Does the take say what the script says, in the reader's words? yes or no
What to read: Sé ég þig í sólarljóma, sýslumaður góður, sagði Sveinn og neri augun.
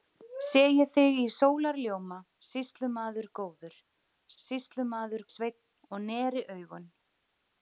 no